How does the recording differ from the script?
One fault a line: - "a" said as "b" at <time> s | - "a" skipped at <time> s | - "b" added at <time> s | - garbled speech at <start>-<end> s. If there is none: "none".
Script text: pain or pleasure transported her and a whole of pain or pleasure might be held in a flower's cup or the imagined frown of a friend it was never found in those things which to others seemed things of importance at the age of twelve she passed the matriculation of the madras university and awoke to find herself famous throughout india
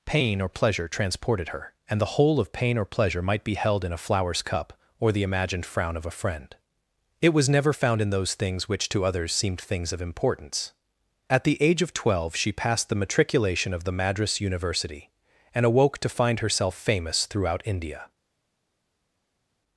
- "a" said as "the" at 2.0 s